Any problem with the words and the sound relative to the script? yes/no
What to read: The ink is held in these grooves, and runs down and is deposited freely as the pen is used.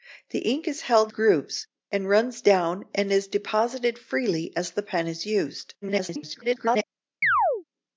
yes